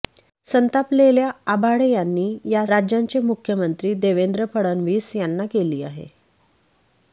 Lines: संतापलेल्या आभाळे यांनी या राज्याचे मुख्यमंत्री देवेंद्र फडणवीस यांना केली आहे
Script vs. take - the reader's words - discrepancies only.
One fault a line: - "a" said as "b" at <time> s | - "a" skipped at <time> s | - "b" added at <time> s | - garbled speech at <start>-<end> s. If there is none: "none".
none